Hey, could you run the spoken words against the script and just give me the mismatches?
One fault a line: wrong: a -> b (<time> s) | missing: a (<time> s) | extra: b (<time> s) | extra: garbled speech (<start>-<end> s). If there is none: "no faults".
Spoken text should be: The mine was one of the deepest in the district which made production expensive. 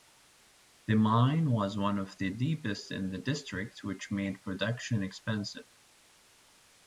no faults